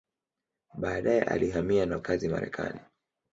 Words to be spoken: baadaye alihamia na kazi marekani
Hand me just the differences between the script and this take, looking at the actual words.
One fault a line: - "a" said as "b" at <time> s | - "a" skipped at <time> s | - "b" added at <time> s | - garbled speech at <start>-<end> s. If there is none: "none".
none